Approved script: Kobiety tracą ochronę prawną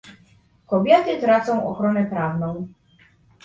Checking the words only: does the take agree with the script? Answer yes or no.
yes